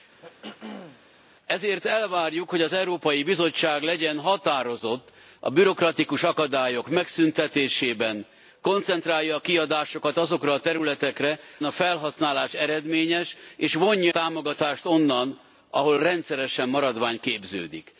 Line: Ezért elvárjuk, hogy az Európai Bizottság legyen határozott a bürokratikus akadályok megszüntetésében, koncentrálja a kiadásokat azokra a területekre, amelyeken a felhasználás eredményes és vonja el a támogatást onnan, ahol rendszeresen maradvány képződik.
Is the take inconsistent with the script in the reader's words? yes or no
yes